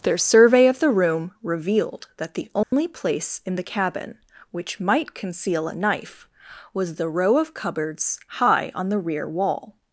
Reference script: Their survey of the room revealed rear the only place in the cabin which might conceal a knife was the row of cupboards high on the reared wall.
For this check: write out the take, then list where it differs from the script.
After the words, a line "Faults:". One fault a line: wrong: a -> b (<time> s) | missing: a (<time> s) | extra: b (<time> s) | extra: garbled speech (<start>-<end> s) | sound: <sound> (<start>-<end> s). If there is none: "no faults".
Their survey of the room revealed that the only place in the cabin which might conceal a knife was the row of cupboards high on the rear wall.
Faults:
wrong: rear -> that (2.2 s)
sound: dropout (2.6-2.7 s)
wrong: reared -> rear (9.0 s)